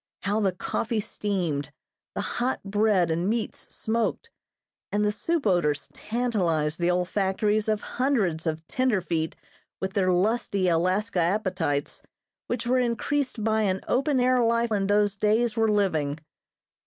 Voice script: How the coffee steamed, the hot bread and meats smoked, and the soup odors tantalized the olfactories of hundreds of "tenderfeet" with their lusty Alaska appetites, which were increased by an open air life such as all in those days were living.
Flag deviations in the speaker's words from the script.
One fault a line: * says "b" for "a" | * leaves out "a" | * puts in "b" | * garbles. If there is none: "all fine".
* leaves out "such as all"